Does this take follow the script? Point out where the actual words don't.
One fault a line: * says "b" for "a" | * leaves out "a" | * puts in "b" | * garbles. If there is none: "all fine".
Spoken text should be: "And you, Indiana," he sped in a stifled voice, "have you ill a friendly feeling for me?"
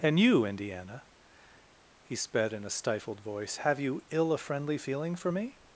all fine